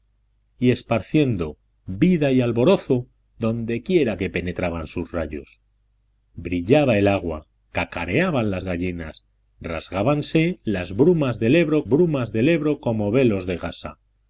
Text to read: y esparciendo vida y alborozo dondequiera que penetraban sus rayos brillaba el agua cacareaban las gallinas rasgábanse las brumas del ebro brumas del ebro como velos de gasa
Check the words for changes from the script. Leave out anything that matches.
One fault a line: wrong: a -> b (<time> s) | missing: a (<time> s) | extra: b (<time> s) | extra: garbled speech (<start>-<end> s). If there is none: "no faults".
no faults